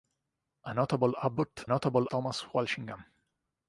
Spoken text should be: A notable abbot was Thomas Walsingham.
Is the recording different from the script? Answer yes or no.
yes